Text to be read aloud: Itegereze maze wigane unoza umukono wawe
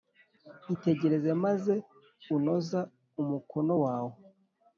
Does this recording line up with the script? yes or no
no